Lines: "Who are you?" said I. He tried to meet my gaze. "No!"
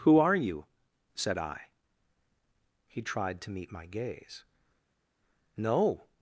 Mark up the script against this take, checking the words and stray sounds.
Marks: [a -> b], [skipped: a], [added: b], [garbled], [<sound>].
"Who are you?" said I. He tried to meet my gaze. "No!"